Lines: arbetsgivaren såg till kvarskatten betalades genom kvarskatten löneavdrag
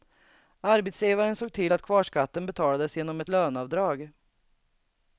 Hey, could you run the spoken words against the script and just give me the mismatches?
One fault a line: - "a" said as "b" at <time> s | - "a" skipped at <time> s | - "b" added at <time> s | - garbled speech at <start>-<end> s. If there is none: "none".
- "att" added at 1.7 s
- "kvarskatten" said as "ett" at 3.2 s